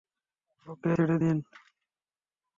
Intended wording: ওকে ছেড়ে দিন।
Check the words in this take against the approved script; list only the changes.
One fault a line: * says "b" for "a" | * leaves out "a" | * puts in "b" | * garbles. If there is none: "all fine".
all fine